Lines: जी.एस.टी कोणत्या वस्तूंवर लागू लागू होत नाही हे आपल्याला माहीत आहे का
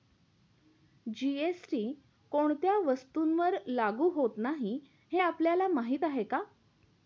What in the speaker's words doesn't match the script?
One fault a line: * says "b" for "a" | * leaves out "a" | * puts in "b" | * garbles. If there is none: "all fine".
* leaves out "लागू"